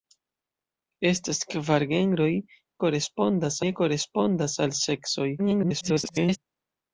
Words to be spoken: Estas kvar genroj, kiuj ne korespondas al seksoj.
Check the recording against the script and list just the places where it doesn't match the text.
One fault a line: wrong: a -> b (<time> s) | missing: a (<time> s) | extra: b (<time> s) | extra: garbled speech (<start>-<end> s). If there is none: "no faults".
wrong: kiuj -> korespondas (2.9 s)
extra: garbled speech (5.4-6.4 s)